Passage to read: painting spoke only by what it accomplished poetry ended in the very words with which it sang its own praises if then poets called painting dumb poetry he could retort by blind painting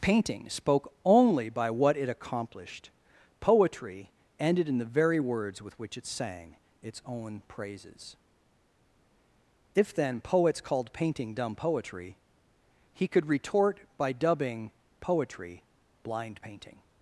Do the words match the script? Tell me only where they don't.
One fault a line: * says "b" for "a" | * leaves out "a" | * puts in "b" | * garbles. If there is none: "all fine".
* puts in "dubbing poetry"